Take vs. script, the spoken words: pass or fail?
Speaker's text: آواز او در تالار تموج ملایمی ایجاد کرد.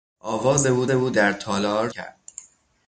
fail